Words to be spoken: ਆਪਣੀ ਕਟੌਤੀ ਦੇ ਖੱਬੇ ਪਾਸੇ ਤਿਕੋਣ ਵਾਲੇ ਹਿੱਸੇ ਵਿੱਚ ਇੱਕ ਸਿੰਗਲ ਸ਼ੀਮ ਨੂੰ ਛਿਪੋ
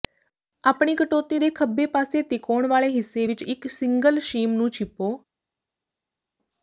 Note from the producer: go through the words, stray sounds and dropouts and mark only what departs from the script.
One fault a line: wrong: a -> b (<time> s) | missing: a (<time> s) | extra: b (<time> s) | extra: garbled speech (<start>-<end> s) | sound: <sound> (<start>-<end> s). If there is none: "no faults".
no faults